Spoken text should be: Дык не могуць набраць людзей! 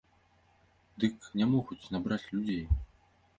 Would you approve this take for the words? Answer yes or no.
yes